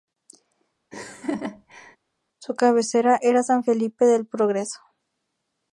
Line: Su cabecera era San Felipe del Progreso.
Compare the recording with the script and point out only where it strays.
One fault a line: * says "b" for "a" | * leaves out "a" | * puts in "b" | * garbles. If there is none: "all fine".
all fine